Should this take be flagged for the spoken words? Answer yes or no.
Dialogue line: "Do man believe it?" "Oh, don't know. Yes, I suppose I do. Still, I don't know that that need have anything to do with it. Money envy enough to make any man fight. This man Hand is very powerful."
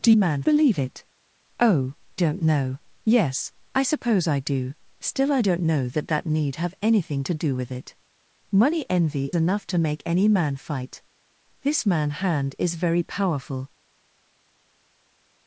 no